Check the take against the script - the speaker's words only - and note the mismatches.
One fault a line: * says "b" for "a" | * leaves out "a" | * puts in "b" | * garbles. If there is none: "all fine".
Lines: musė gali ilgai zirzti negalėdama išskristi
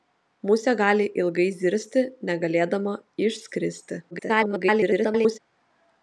* garbles